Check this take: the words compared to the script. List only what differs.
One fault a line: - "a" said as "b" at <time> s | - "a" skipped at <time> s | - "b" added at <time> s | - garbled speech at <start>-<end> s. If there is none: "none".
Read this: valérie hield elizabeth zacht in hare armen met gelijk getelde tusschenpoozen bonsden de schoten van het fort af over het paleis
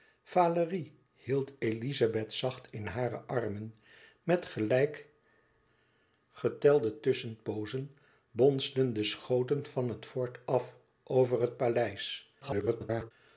- garbled speech at 12.4-13.1 s